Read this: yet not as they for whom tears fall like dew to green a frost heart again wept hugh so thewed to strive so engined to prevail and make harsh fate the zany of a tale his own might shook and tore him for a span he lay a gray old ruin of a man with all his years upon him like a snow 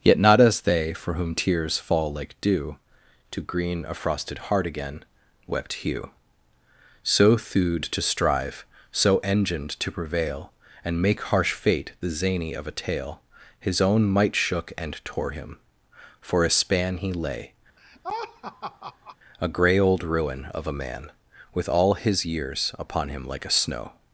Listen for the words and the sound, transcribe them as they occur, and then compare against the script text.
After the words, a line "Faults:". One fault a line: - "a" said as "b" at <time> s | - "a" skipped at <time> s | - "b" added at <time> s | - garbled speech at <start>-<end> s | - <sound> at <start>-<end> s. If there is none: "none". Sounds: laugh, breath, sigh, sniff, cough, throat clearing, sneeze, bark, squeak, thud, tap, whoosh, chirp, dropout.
yet not as they for whom tears fall like dew to green a frosted heart again wept hugh so thewed to strive so engined to prevail and make harsh fate the zany of a tale his own might shook and tore him for a span he lay a gray old ruin of a man with all his years upon him like a snow
Faults:
- "frost" said as "frosted" at 3.9 s
- laugh at 17.8-19.2 s